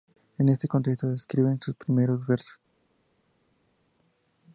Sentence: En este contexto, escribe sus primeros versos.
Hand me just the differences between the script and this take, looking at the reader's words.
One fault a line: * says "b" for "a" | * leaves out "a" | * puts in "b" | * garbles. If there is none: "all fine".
all fine